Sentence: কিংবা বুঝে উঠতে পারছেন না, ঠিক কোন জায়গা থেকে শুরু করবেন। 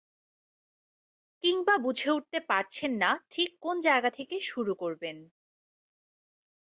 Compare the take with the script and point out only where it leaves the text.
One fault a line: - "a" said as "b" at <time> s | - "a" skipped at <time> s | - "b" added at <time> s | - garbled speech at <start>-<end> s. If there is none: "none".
none